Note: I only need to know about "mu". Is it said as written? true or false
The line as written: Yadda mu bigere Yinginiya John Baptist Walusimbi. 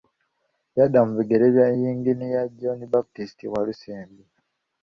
true